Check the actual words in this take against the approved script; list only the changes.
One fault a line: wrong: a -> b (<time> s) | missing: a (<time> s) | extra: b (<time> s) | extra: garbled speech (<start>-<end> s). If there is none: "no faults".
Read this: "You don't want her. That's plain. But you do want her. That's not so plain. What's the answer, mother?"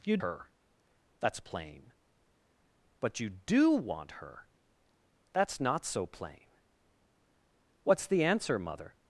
missing: don't want (0.2 s)